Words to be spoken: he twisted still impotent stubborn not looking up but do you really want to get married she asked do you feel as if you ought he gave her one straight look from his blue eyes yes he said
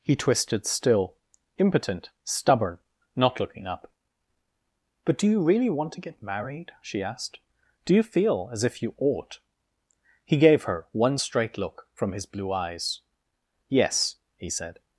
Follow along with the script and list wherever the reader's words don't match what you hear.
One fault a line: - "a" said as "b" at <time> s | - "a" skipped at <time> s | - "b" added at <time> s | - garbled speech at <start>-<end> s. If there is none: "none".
none